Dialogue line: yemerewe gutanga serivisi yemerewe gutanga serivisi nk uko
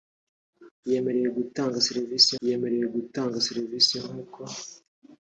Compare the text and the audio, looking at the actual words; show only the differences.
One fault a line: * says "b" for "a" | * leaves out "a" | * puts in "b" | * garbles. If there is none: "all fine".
all fine